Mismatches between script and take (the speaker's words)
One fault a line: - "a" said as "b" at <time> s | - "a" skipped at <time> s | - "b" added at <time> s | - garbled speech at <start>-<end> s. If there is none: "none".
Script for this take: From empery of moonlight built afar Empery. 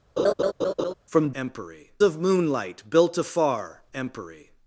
none